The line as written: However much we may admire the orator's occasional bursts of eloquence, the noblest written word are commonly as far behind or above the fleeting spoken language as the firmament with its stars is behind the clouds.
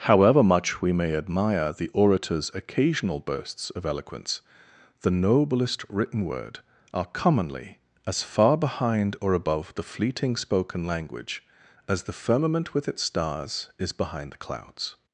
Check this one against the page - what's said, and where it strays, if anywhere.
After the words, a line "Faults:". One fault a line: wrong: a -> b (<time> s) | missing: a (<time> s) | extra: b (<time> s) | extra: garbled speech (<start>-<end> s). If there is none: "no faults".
However much we may admire the orator's occasional bursts of eloquence, the noblest written word are commonly as far behind or above the fleeting spoken language as the firmament with its stars is behind the clouds.
Faults:
no faults